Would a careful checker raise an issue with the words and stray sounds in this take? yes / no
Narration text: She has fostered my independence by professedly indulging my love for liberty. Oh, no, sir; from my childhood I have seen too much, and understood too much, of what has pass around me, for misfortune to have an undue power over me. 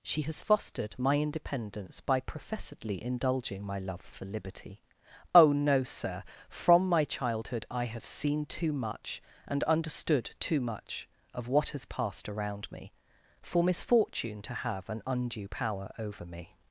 yes